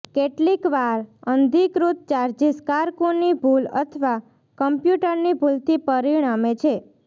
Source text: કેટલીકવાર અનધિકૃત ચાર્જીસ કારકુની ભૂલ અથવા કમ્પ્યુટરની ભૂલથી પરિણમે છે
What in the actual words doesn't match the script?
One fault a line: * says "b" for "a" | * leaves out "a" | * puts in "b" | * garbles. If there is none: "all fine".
all fine